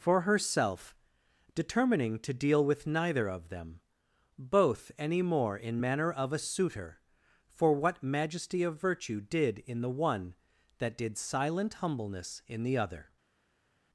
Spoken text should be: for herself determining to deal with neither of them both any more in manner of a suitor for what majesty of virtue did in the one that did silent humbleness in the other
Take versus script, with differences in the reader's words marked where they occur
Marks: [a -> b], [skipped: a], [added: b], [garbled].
for herself determining to deal with neither of them both any more in manner of a suitor for what majesty of virtue did in the one that did silent humbleness in the other